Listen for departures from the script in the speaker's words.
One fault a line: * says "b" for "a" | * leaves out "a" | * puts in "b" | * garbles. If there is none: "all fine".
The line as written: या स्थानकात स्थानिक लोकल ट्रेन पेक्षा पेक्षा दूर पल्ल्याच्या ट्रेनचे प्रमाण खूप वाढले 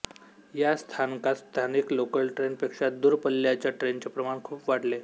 * leaves out "पेक्षा"